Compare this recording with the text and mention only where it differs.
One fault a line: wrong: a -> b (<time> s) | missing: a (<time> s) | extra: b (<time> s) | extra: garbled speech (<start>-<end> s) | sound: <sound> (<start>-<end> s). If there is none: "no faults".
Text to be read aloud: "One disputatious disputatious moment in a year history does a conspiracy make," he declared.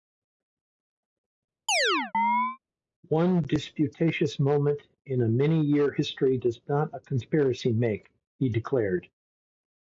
sound: chirp (1.7-2.6 s)
missing: disputatious (4.4 s)
extra: many (5.3 s)
extra: not (6.7 s)